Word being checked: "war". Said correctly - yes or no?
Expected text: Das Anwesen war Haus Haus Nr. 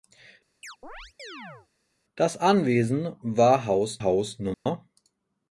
yes